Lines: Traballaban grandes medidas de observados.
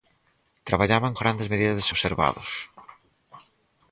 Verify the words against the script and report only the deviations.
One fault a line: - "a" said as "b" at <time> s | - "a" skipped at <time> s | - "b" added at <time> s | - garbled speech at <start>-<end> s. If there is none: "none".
none